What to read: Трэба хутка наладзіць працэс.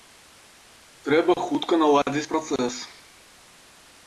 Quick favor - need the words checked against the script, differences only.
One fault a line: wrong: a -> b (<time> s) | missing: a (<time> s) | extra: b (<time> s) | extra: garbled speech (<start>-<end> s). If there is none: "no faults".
no faults